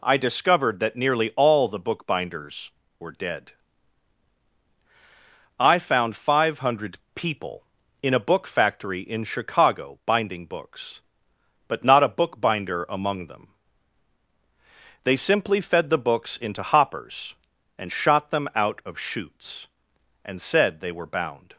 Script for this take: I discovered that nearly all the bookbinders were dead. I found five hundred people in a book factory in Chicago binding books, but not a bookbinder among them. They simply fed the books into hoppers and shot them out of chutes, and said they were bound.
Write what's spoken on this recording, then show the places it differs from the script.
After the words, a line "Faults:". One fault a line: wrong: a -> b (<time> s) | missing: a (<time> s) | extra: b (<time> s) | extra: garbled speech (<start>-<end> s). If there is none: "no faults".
I discovered that nearly all the bookbinders were dead. I found five hundred people in a book factory in Chicago binding books, but not a bookbinder among them. They simply fed the books into hoppers and shot them out of chutes, and said they were bound.
Faults:
no faults